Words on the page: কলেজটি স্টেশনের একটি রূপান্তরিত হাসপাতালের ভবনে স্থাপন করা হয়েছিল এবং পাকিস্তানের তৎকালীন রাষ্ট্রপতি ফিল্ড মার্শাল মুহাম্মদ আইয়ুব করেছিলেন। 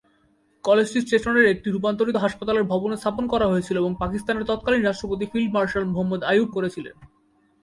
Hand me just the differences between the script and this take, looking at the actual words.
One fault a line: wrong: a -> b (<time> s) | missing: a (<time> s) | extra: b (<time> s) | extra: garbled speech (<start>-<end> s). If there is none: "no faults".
no faults